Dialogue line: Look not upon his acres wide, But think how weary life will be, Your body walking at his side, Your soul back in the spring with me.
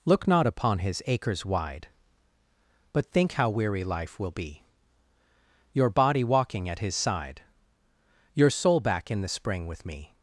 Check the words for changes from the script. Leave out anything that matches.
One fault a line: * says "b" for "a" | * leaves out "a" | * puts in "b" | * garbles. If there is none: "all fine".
all fine